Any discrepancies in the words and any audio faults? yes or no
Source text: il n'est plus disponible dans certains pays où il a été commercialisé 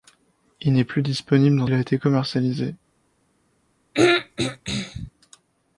yes